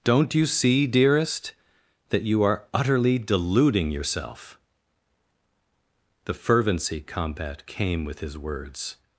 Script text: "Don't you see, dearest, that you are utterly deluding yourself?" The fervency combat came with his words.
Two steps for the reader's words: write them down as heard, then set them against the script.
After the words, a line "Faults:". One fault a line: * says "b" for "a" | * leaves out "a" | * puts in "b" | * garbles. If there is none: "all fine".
"Don't you see, dearest, that you are utterly deluding yourself?" The fervency combat came with his words.
Faults:
all fine